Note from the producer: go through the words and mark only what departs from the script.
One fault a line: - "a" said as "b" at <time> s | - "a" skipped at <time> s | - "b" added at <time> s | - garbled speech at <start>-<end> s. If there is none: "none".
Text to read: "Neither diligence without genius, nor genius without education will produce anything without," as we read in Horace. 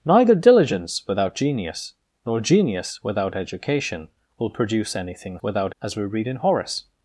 none